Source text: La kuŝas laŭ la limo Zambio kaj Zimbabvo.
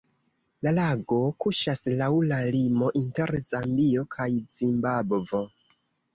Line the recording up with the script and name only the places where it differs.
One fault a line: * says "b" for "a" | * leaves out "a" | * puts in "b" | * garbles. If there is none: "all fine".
* puts in "lago"
* puts in "inter"